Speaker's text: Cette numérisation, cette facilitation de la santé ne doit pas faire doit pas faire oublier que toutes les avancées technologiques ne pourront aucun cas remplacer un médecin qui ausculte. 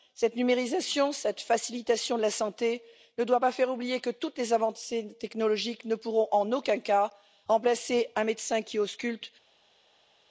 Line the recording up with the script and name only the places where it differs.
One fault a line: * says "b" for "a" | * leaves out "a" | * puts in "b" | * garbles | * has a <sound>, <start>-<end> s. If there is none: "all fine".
* leaves out "doit pas faire"
* puts in "en"